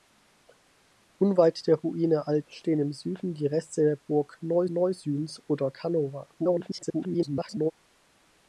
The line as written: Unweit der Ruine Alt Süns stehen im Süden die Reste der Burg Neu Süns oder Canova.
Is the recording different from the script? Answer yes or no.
yes